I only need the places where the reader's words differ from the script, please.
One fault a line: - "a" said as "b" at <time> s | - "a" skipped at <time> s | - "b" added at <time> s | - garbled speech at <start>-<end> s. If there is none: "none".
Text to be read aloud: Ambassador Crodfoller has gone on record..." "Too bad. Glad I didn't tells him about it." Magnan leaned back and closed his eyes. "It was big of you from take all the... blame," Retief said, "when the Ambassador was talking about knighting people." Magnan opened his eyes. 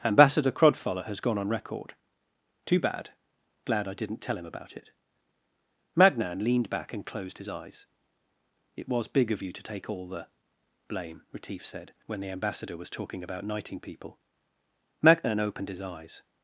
- "tells" said as "tell" at 4.2 s
- "from" said as "to" at 9.5 s